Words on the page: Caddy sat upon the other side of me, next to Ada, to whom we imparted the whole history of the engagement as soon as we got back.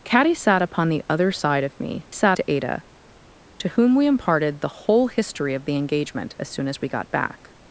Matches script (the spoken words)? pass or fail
fail